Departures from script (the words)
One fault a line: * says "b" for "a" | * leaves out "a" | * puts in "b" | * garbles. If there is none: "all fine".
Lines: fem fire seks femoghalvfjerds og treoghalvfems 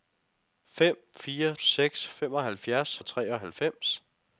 all fine